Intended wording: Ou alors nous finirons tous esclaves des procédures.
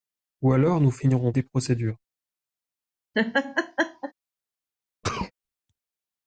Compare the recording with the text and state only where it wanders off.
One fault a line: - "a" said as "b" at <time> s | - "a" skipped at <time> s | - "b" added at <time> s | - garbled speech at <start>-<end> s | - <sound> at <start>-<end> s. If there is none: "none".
- "tous esclaves" skipped at 1.3 s
- laugh at 3.1-4.1 s
- sneeze at 5.0-5.3 s